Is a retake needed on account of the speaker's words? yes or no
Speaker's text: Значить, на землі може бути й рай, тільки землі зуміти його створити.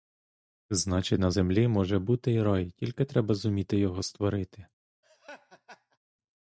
yes